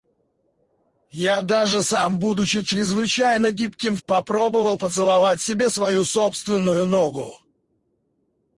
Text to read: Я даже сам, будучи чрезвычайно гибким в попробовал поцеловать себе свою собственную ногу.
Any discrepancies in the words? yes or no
no